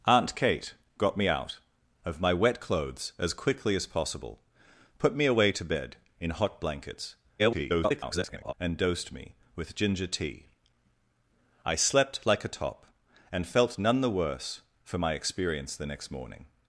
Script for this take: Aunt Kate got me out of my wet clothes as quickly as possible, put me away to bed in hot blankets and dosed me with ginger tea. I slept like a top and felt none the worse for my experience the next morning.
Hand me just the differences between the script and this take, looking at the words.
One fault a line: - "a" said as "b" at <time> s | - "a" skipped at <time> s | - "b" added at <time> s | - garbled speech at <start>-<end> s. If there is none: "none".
- garbled speech at 7.4-8.5 s